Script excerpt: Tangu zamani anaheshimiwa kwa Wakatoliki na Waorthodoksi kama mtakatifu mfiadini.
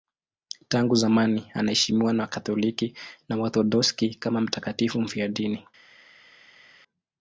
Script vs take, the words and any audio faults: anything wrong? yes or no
yes